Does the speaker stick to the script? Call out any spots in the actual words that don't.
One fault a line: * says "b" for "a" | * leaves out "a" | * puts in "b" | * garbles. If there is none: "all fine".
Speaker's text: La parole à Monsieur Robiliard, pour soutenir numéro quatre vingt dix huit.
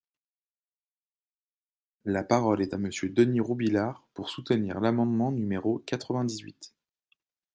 * puts in "est"
* puts in "Denys"
* puts in "l'amendement"